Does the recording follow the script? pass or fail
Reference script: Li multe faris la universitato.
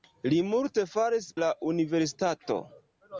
pass